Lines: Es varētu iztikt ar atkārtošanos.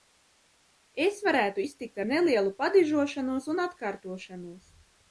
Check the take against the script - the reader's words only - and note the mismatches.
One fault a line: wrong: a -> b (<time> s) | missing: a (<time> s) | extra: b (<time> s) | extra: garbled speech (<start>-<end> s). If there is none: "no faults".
extra: nelielu padižošanos un (2.1 s)